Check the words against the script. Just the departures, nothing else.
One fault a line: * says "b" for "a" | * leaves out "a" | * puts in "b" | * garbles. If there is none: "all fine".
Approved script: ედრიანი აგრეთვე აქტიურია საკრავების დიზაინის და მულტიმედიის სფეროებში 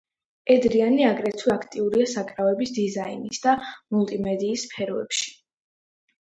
all fine